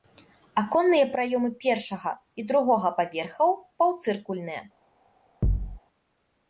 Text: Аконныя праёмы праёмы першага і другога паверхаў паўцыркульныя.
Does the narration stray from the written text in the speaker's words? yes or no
yes